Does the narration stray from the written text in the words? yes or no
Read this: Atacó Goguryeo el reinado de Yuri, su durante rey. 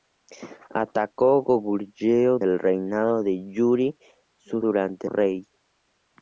no